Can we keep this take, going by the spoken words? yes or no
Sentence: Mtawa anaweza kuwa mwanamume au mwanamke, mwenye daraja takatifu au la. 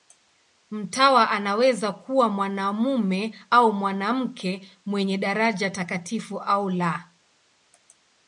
yes